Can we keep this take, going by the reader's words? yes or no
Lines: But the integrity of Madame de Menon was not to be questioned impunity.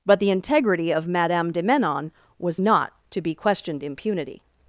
yes